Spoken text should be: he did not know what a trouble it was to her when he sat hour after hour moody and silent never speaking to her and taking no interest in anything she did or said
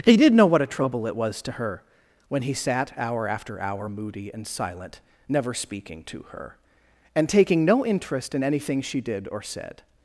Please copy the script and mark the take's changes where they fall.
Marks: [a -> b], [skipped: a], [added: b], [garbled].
he did [skipped: not] know what a trouble it was to her when he sat hour after hour moody and silent never speaking to her and taking no interest in anything she did or said